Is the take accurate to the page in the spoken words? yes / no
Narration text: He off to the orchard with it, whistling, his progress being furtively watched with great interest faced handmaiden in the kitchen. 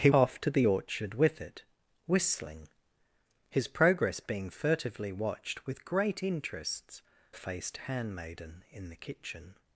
yes